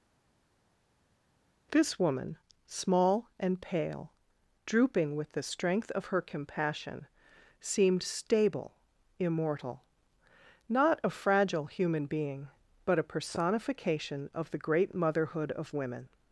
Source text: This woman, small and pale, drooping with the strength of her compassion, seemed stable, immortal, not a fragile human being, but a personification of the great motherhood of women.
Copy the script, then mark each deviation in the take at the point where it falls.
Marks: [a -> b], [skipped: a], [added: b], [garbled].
This woman, small and pale, drooping with the strength of her compassion, seemed stable, immortal, not a fragile human being, but a personification of the great motherhood of women.